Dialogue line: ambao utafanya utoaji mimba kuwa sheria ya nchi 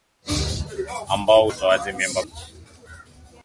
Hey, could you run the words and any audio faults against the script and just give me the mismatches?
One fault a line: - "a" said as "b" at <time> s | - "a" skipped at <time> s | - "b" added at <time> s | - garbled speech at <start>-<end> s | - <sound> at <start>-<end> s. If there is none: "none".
- "utafanya" skipped at 1.5 s
- "kuwa sheria ya" skipped at 2.2 s